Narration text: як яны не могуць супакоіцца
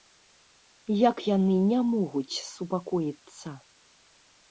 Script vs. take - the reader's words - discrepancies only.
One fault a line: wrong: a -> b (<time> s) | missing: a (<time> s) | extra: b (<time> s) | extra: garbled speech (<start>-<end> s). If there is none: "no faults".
no faults